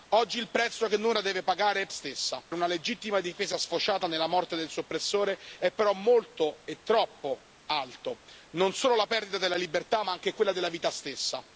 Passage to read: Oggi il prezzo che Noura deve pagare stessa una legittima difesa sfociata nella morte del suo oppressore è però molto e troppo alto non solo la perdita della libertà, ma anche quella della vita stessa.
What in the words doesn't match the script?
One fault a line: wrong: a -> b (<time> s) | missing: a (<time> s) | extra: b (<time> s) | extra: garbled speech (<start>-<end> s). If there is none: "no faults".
no faults